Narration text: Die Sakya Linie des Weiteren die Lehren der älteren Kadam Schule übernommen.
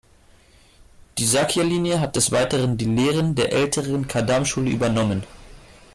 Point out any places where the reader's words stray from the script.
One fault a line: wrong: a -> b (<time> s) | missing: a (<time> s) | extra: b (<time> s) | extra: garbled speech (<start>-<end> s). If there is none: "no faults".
extra: hat (2.0 s)